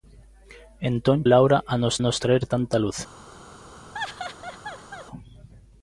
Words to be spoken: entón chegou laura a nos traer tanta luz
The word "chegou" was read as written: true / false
false